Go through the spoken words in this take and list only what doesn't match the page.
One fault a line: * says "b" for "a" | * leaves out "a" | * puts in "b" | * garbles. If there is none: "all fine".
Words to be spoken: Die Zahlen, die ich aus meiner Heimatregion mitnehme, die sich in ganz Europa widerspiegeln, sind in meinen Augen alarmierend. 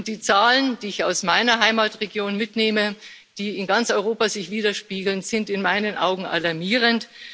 all fine